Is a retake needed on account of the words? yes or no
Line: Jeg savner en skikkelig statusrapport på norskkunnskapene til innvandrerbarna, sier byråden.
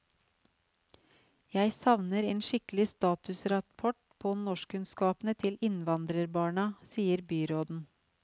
no